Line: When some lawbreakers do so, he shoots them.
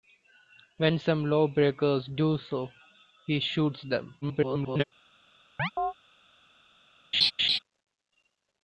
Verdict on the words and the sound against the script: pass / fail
fail